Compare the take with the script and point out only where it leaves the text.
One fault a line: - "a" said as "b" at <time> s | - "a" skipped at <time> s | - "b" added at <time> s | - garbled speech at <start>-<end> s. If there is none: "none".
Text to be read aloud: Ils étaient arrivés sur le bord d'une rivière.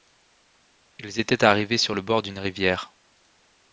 none